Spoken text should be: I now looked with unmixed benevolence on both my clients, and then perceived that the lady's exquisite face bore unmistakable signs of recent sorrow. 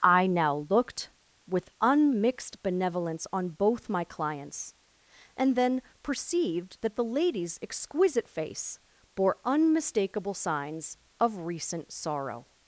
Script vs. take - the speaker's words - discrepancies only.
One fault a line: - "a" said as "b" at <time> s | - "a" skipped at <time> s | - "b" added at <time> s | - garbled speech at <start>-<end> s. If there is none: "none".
none